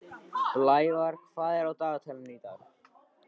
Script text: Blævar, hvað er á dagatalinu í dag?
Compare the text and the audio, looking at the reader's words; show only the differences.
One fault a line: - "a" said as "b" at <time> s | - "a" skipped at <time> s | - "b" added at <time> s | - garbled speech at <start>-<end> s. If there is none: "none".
none